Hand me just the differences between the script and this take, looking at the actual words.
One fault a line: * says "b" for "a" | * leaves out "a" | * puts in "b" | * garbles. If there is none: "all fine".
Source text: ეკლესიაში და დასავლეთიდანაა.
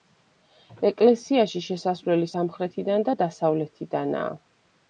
* puts in "შესასვლელი სამხრეთიდან"